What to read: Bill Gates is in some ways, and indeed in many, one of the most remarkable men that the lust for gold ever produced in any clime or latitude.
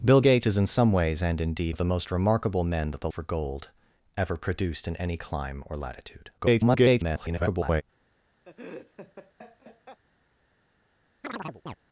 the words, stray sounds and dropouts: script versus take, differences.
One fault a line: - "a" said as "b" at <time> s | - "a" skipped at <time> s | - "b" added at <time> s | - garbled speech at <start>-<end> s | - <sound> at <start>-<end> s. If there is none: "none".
- "in many one" skipped at 1.8 s
- "lust" skipped at 3.1 s
- garbled speech at 6.4-7.8 s
- laugh at 8.5-10.0 s
- chirp at 11.2-11.8 s